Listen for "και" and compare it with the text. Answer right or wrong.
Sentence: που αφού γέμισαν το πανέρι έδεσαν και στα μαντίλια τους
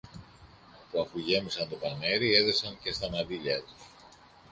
right